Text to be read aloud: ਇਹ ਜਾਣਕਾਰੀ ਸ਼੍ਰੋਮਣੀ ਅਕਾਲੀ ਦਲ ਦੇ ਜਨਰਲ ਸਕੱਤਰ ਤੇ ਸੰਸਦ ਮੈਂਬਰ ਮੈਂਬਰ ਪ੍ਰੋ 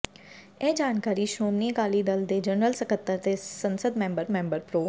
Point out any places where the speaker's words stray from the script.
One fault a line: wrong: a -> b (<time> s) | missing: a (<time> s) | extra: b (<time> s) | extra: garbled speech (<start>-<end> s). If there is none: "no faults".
no faults